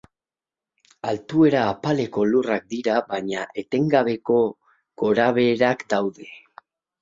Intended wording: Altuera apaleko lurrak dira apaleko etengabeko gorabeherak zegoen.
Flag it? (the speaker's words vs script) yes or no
yes